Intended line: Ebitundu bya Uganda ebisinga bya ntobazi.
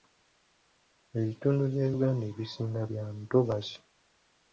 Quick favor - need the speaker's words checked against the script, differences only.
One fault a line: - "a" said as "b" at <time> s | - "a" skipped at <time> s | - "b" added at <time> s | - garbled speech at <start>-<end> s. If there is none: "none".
none